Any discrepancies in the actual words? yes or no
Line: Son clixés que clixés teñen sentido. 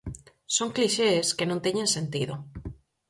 yes